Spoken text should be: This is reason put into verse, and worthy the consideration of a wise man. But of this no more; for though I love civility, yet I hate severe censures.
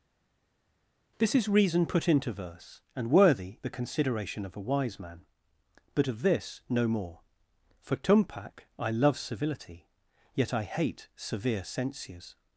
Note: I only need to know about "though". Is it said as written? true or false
false